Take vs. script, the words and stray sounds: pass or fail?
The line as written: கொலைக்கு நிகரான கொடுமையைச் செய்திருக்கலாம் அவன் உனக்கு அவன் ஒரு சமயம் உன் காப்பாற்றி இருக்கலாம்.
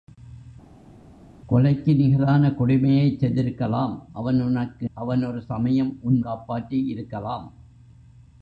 pass